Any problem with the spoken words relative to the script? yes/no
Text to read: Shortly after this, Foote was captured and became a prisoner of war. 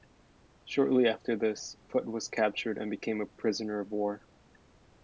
no